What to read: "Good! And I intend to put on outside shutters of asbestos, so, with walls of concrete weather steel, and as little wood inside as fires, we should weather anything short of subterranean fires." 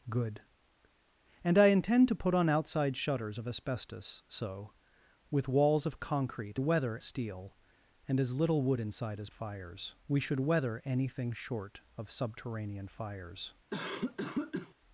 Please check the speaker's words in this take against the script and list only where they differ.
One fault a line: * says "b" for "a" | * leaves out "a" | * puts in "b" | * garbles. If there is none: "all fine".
all fine